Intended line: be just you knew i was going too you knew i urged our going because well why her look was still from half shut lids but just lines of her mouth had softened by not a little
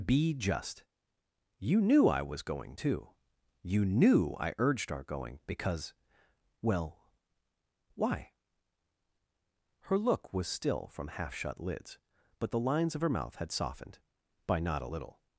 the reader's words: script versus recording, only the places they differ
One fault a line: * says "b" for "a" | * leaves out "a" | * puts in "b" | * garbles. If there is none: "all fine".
* says "the" for "just"